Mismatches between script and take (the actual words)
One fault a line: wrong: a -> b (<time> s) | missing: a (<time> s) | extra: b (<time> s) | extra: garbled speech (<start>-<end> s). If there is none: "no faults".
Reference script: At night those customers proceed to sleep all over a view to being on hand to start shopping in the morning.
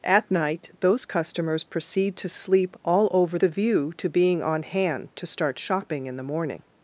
no faults